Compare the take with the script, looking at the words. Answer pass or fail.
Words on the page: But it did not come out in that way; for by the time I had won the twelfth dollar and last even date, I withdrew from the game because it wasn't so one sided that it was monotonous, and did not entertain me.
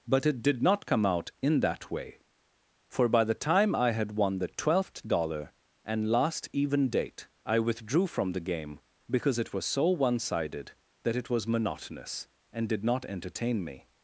fail